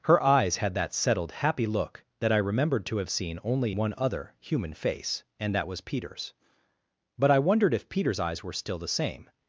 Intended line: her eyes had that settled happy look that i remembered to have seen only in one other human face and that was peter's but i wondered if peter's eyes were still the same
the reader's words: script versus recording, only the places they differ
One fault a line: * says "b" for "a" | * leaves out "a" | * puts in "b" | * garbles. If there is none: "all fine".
* leaves out "in"